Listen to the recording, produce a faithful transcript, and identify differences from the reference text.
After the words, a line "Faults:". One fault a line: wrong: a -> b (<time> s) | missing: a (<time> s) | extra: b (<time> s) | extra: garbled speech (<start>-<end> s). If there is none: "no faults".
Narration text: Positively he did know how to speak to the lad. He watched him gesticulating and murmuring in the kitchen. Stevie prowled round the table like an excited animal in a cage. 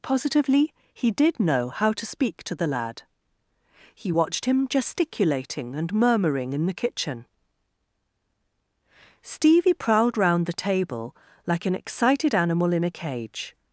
Positively he did know how to speak to the lad. He watched him gesticulating and murmuring in the kitchen. Stevie prowled round the table like an excited animal in a cage.
Faults:
no faults